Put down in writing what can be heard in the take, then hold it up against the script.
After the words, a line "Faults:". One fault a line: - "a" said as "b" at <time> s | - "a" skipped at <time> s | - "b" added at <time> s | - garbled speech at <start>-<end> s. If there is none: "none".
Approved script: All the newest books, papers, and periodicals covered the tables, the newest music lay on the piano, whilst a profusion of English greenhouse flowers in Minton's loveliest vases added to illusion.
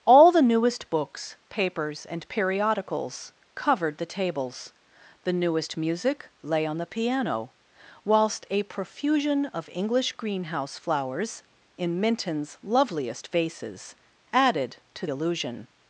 All the newest books, papers, and periodicals covered the tables, the newest music lay on the piano, whilst a profusion of English greenhouse flowers in Minton's loveliest vases added to illusion.
Faults:
none